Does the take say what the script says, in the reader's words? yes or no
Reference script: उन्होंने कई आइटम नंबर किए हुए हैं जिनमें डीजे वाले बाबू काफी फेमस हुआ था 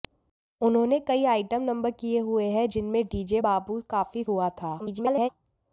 no